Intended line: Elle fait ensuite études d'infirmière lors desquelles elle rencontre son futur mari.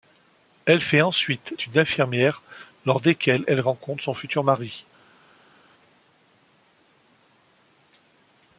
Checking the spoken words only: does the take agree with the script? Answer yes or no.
yes